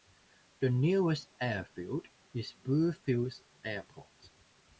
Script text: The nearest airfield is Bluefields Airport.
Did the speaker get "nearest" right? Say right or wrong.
right